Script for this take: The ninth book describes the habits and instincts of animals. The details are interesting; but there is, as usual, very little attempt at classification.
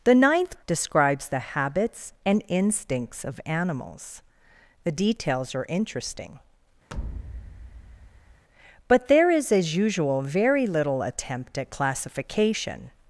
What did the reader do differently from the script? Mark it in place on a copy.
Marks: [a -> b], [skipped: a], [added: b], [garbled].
The ninth [skipped: book] describes the habits and instincts of animals. The details are interesting; but there is, as usual, very little attempt at classification.